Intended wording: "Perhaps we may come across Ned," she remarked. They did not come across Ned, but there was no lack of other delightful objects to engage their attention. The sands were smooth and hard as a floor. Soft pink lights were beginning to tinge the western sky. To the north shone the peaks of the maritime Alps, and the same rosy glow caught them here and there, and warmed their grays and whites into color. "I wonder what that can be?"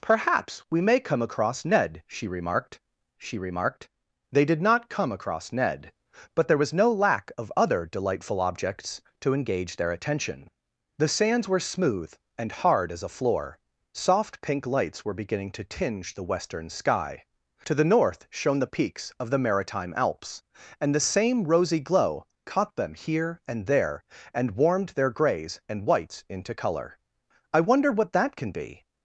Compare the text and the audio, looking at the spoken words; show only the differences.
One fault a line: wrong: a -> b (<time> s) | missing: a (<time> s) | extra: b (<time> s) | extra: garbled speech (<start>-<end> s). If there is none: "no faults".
extra: she remarked (3.2 s)